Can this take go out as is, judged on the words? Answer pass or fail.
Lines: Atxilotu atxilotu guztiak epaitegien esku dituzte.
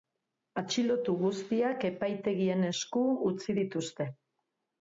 fail